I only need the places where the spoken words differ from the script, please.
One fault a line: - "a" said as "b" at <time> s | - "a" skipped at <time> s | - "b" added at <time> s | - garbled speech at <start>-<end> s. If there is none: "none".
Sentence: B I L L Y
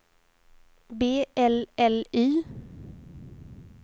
- "I" skipped at 1.3 s